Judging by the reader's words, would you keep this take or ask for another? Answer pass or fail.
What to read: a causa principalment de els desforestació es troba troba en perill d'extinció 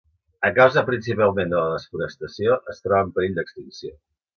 fail